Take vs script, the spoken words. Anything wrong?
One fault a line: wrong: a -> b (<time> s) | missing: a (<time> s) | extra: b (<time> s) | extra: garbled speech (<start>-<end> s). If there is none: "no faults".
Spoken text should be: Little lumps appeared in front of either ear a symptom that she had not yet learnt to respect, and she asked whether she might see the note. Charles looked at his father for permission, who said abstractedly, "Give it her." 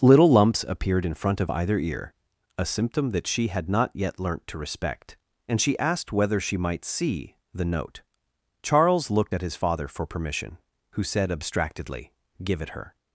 no faults